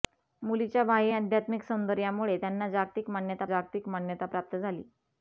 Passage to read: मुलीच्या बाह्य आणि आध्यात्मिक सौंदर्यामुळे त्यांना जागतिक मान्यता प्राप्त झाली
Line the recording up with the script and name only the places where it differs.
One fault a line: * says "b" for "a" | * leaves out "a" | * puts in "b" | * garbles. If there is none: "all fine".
* leaves out "आणि"
* puts in "जागतिक मान्यता"